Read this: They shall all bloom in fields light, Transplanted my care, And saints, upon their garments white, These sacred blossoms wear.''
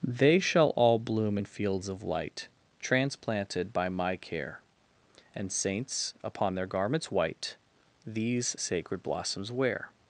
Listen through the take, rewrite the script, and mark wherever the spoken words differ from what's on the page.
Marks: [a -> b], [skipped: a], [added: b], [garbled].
They shall all bloom in fields [added: of] light, Transplanted [added: by] my care, And saints, upon their garments white, These sacred blossoms wear.''